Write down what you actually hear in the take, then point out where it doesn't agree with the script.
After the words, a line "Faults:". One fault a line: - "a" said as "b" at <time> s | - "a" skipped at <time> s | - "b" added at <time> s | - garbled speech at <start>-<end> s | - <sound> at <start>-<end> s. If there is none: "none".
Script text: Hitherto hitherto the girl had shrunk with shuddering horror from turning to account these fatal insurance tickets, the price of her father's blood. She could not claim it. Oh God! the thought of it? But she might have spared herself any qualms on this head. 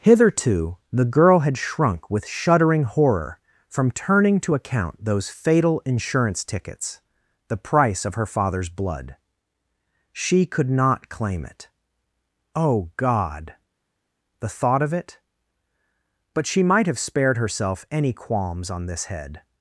Hitherto the girl had shrunk with shuddering horror from turning to account those fatal insurance tickets, the price of her father's blood. She could not claim it. Oh God! the thought of it? But she might have spared herself any qualms on this head.
Faults:
- "hitherto" skipped at 0.8 s
- "these" said as "those" at 5.0 s